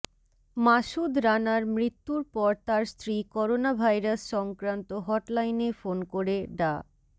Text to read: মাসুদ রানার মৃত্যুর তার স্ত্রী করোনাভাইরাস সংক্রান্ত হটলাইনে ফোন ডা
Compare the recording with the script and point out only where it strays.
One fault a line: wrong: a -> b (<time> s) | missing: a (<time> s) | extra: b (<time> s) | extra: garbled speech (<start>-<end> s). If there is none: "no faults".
extra: পর (2.3 s)
extra: করে (6.1 s)